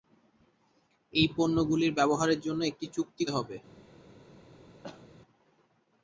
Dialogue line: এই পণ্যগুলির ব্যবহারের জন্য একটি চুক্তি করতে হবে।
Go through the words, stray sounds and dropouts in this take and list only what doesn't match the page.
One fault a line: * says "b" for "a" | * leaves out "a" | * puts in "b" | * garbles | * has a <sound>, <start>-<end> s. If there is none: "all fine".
* leaves out "করতে"
* has a cough, 4.8-5.1 s